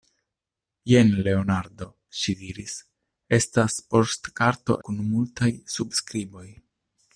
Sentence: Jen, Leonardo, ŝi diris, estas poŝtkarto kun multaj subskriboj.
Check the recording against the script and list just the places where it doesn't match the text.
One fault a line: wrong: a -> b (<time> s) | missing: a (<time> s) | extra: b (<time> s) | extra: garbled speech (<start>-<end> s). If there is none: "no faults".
no faults